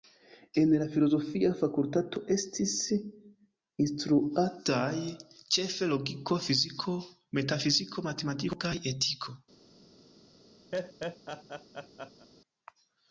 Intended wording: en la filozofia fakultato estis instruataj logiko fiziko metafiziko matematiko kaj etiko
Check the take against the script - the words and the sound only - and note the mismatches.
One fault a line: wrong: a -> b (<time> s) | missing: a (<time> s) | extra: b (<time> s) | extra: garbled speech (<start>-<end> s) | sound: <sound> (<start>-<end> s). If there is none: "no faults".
extra: ĉefe (5.6 s)
sound: laugh (10.7-12.3 s)